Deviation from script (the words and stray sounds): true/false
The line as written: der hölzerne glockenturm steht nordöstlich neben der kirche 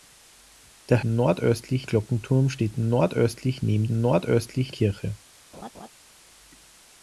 true